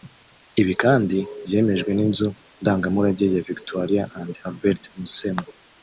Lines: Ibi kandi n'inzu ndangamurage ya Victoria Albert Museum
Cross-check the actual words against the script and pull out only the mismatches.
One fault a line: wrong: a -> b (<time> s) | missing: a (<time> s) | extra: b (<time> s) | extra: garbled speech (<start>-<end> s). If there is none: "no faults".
extra: byemejwe (1.5 s)
extra: and (4.2 s)